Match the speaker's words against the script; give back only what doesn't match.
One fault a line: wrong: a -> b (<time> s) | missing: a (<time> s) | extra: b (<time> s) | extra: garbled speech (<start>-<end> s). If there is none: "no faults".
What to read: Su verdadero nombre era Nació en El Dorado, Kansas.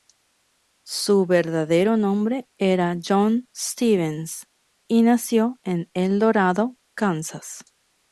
extra: John Stevens y (3.0 s)